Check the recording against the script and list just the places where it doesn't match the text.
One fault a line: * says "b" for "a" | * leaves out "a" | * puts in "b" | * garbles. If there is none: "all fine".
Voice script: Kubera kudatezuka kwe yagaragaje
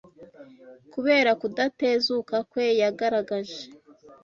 all fine